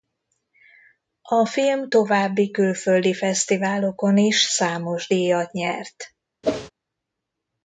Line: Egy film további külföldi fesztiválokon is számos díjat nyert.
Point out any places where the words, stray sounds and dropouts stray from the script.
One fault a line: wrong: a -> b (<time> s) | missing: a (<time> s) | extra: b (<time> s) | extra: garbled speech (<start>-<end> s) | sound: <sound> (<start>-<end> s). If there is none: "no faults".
wrong: Egy -> A (1.2 s)
sound: whoosh (6.4-6.7 s)